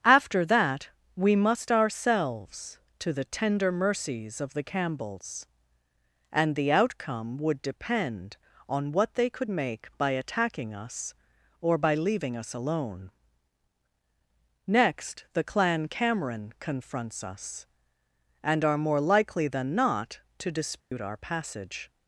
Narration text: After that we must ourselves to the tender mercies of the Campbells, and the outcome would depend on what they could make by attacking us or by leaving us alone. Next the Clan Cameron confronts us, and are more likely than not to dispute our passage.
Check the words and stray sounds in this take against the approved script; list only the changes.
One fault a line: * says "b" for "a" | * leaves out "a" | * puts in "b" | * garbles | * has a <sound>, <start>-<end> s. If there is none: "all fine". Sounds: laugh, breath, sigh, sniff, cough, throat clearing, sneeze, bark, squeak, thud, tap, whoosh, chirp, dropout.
* has a dropout, 20.8-20.9 s